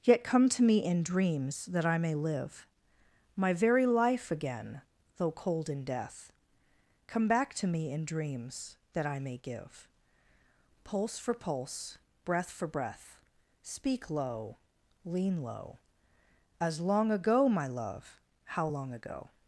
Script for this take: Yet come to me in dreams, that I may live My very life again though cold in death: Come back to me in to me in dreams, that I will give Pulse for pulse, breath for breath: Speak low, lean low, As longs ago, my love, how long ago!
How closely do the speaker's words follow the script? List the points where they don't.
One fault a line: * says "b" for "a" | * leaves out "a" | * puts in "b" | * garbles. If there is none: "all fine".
* leaves out "to me in"
* says "may" for "will"
* says "long" for "longs"